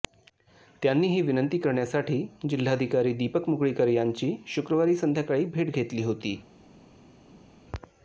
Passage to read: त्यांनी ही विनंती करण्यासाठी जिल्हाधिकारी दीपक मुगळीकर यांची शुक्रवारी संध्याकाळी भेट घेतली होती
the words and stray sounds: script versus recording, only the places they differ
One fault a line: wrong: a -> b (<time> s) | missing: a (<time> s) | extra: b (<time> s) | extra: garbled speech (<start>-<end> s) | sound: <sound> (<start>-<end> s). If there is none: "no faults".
no faults